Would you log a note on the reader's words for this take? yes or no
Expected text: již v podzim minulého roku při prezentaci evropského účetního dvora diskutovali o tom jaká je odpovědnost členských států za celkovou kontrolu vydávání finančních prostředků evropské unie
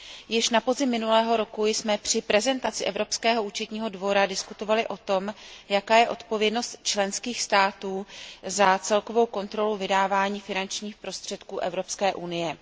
yes